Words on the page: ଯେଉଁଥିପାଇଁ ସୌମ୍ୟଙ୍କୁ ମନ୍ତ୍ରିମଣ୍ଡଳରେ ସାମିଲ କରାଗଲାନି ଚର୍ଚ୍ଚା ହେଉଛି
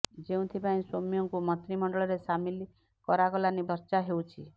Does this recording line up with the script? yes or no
yes